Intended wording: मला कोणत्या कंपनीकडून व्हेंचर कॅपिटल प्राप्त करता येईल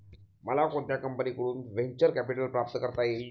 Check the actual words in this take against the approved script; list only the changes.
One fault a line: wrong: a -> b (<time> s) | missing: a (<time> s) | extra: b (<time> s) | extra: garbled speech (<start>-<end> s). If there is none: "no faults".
no faults